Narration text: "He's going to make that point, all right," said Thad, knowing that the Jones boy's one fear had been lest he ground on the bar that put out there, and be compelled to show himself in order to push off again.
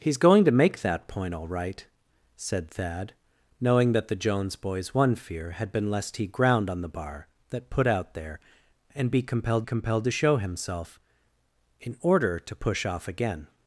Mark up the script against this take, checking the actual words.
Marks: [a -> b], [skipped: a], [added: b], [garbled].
"He's going to make that point, all right," said Thad, knowing that the Jones boy's one fear had been lest he ground on the bar that put out there, and be compelled [added: compelled] to show himself in order to push off again.